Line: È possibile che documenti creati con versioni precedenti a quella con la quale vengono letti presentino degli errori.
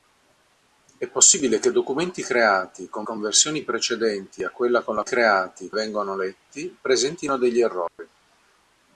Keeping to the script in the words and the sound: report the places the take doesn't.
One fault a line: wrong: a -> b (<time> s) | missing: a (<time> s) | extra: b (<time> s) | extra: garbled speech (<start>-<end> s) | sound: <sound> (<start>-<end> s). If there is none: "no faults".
extra: con (3.0 s)
wrong: quale -> creati (5.0 s)
sound: dropout (7.9-8.0 s)